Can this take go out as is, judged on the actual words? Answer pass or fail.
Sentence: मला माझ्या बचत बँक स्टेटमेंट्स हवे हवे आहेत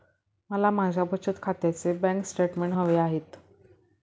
fail